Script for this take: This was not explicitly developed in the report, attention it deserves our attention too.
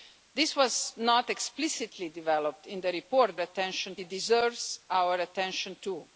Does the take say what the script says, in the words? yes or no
yes